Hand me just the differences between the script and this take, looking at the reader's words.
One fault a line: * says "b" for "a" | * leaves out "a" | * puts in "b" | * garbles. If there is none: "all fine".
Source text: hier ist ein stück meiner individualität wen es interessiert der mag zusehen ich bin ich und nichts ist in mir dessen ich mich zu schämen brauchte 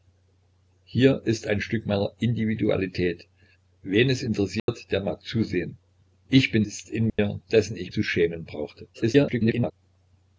* leaves out "ich und nichts"
* leaves out "mich"
* garbles